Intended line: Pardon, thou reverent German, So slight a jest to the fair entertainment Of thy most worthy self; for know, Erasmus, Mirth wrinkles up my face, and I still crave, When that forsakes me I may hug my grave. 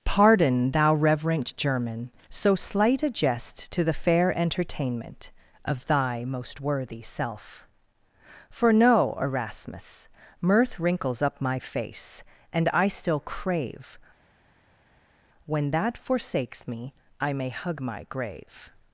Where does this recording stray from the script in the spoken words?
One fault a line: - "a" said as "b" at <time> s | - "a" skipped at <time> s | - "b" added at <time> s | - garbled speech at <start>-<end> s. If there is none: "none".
none